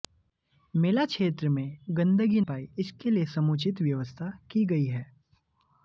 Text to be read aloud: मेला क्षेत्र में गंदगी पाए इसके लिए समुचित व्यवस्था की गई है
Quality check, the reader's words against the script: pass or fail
pass